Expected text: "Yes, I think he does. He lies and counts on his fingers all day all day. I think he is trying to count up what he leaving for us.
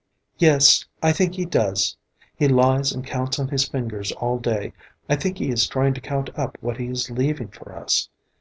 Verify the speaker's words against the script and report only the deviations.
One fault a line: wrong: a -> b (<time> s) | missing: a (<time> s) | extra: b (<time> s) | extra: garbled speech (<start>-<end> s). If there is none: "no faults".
missing: all day (4.7 s)
extra: is (6.9 s)